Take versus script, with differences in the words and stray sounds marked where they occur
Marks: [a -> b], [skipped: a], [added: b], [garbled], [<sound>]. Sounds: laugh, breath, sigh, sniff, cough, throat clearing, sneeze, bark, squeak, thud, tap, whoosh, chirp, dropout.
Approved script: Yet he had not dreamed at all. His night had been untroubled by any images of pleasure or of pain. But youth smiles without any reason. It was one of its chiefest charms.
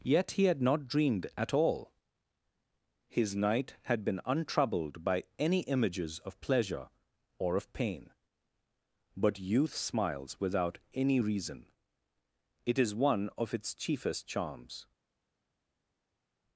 Yet he had not dreamed at all. His night had been untroubled by any images of pleasure or of pain. But youth smiles without any reason. It [was -> is] one of its chiefest charms.